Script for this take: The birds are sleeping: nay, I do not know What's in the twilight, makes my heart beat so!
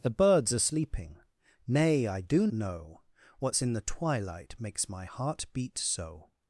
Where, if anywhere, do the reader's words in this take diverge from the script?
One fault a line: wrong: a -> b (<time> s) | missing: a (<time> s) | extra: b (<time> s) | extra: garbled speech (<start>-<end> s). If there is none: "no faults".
missing: not (2.5 s)